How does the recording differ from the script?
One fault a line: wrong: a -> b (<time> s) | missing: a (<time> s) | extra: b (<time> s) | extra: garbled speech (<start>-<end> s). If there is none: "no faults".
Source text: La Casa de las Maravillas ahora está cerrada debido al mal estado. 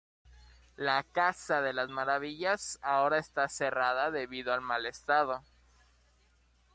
no faults